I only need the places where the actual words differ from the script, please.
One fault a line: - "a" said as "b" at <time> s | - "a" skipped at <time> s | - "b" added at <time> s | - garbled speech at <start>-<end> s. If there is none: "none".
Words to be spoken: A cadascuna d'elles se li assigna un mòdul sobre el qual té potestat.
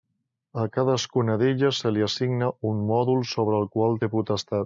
none